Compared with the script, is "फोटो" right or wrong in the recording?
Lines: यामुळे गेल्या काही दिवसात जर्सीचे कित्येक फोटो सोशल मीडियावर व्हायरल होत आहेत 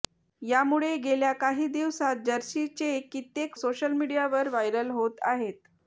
wrong